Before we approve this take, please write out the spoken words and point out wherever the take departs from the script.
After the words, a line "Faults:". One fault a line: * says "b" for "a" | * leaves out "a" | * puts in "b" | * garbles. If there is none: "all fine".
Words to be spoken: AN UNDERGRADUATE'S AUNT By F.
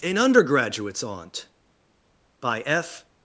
AN UNDERGRADUATE'S AUNT By F.
Faults:
all fine